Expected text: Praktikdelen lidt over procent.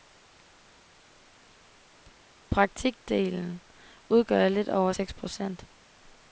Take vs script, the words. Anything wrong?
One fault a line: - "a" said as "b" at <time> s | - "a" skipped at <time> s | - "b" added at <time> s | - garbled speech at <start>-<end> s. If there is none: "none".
- "udgør" added at 4.1 s
- "seks" added at 4.9 s